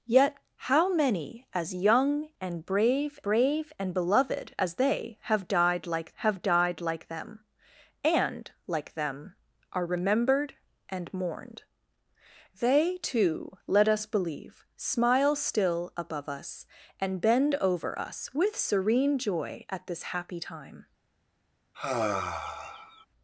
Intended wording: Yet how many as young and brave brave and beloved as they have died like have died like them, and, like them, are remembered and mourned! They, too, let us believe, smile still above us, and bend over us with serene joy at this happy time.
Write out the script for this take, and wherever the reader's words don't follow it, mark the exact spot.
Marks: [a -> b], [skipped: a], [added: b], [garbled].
Yet how many as young and brave brave and beloved as they have died like have died like them, and, like them, are remembered and mourned! They, too, let us believe, smile still above us, and bend over us with serene joy at this happy time.